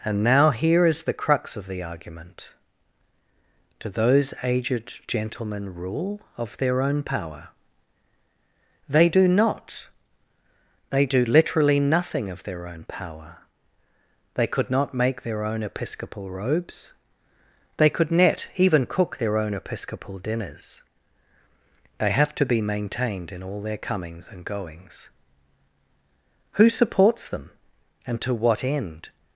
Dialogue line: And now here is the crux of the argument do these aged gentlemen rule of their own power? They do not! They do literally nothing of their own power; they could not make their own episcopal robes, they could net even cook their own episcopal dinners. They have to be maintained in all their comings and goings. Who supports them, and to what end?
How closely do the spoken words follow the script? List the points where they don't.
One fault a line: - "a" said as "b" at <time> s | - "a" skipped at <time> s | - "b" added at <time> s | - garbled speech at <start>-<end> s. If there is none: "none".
- "these" said as "those" at 3.9 s